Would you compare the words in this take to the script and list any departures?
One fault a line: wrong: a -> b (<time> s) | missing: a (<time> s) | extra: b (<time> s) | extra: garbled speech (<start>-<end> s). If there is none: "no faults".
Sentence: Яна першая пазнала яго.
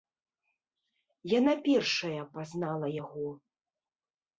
no faults